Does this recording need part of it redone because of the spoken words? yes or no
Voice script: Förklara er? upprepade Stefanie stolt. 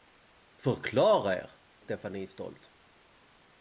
yes